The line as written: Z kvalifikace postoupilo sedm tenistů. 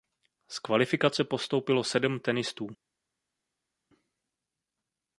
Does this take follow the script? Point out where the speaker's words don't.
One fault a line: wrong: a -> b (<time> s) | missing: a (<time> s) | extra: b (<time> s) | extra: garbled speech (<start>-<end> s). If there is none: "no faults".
no faults